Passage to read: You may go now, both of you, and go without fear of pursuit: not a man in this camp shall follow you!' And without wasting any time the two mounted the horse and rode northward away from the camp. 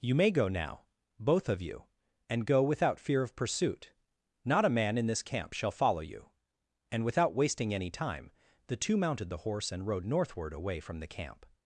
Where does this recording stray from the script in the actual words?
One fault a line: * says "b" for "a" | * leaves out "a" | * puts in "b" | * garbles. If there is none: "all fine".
all fine